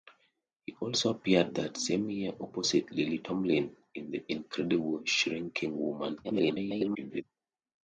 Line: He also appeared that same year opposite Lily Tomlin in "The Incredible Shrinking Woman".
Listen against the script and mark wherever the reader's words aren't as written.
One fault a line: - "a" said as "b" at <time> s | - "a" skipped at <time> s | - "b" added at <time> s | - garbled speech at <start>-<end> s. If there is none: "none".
- garbled speech at 6.2-7.2 s